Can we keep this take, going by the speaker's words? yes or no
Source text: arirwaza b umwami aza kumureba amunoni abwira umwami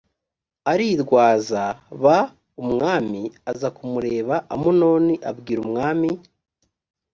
yes